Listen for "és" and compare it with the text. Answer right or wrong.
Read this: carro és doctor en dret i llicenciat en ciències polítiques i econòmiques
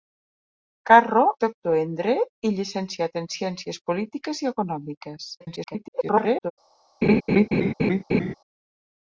wrong